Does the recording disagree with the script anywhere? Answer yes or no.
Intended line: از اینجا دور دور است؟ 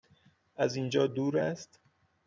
yes